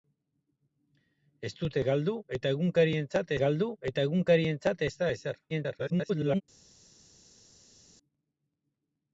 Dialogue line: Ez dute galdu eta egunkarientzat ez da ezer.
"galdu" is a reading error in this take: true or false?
false